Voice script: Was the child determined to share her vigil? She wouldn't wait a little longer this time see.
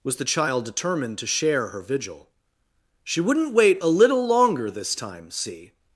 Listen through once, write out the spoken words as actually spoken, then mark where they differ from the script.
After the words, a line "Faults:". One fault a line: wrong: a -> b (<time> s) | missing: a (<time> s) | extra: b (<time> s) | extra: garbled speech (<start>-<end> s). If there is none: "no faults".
Was the child determined to share her vigil? She wouldn't wait a little longer this time see.
Faults:
no faults